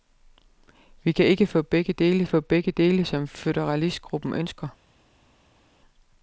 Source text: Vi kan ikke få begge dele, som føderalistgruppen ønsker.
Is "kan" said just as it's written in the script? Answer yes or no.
yes